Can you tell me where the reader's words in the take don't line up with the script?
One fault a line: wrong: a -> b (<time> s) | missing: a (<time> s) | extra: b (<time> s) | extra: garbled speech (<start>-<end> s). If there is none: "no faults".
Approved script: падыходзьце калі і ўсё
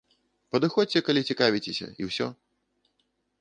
extra: цікавіцеся (1.3 s)